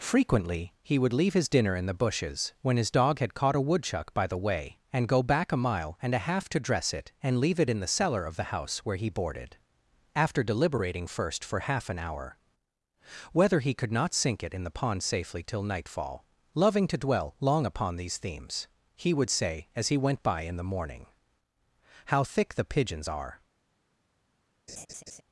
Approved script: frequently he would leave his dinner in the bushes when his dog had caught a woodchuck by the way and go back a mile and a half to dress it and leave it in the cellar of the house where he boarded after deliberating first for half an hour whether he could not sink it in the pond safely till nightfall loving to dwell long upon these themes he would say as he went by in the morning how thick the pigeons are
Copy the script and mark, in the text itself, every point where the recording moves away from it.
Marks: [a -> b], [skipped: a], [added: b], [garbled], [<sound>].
frequently he would leave his dinner in the bushes when his dog had caught a woodchuck by the way and go back a mile and a half to dress it and leave it in the cellar of the house where he boarded after deliberating first for half an hour whether he could not sink it in the pond safely till nightfall loving to dwell long upon these themes he would say as he went by in the morning how thick the pigeons are [laugh]